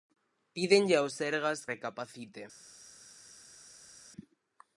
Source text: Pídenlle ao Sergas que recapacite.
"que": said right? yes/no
no